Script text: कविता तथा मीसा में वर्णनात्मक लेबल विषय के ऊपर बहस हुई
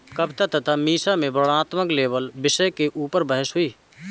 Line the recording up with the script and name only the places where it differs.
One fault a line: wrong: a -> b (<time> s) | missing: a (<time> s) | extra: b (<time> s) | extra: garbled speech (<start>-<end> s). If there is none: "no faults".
no faults